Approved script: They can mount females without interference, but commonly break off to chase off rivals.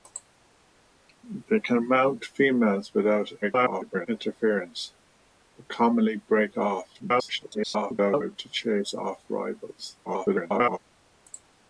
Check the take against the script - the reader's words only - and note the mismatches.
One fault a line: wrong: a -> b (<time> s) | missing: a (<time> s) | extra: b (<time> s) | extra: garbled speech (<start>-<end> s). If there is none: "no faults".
extra: garbled speech (3.4-4.1 s)
extra: garbled speech (7.0-8.4 s)
extra: garbled speech (10.0-10.8 s)